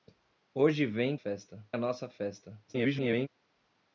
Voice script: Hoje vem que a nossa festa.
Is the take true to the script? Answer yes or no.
no